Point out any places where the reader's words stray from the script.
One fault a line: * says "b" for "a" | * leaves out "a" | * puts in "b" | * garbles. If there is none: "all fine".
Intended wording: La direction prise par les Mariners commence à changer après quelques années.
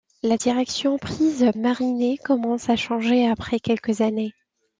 * leaves out "par les"